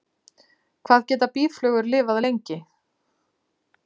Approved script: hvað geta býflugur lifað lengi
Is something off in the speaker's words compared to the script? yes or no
no